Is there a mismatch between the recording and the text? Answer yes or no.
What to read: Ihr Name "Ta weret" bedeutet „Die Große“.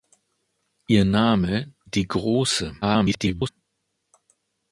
yes